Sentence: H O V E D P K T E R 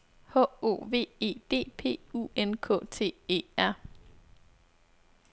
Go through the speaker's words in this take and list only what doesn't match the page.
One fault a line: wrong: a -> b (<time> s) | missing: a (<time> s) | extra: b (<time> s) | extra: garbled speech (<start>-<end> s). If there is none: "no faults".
extra: U N (2.1 s)